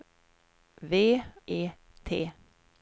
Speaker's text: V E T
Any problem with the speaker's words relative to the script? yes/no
no